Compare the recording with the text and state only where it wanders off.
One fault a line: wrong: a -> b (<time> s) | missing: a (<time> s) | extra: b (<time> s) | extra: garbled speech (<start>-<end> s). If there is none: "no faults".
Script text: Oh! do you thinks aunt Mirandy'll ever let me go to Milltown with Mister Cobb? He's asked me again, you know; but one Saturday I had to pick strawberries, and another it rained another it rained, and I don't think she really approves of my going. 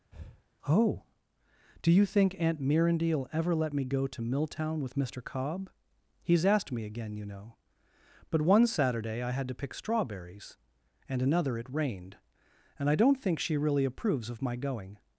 wrong: thinks -> think (2.1 s)
missing: another it rained (12.2 s)